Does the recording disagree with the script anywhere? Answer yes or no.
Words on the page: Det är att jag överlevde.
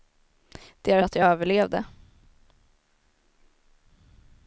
no